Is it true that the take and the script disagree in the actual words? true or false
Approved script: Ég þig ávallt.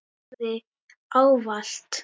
false